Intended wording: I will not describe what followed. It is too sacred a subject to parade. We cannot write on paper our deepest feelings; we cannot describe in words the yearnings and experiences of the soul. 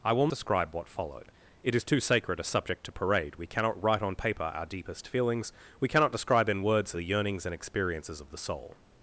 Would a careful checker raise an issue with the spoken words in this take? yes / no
yes